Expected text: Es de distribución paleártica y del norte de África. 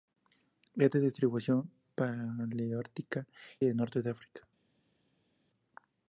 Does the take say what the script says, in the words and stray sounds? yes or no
no